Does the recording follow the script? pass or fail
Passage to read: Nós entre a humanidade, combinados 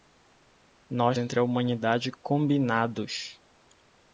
pass